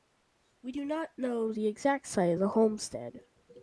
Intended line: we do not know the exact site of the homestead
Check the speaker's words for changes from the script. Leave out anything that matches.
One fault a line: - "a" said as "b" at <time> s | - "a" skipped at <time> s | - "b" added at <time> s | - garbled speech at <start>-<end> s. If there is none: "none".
none